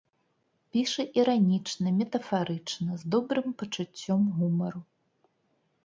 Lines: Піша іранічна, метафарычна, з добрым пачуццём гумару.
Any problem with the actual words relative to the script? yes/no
no